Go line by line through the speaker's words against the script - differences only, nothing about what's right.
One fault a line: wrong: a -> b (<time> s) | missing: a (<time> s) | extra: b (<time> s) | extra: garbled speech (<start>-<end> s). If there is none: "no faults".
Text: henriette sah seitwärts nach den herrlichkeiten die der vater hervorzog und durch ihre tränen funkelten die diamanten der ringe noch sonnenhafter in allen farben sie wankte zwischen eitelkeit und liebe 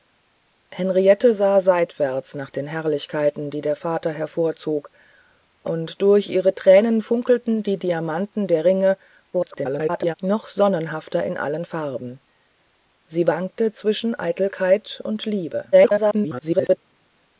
extra: garbled speech (9.3-10.1 s)
extra: garbled speech (15.7-16.8 s)